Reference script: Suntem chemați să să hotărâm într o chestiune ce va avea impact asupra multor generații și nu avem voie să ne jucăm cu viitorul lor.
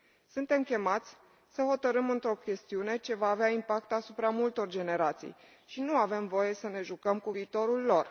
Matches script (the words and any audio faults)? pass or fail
fail